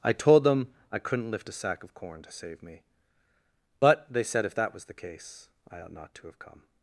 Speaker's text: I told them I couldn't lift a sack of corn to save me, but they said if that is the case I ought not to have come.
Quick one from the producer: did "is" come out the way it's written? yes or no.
no